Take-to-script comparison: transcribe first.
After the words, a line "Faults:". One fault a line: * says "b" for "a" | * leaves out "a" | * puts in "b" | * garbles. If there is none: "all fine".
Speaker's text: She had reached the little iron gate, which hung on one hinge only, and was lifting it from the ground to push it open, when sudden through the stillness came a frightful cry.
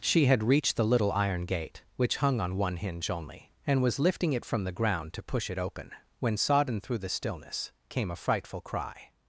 She had reached the little iron gate, which hung on one hinge only, and was lifting it from the ground to push it open, when sodden through the stillness came a frightful cry.
Faults:
* says "sodden" for "sudden"